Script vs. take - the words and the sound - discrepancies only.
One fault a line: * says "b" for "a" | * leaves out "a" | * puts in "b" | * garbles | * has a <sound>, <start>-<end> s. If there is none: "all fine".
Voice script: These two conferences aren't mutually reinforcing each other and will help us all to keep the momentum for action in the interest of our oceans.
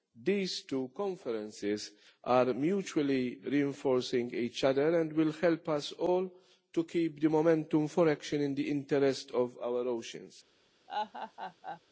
* says "are" for "aren't"
* has a laugh, 10.9-11.8 s